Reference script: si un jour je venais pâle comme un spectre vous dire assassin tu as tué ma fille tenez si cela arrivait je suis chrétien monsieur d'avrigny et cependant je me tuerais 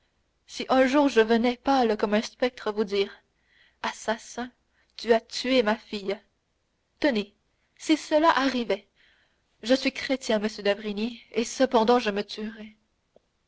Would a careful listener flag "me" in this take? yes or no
no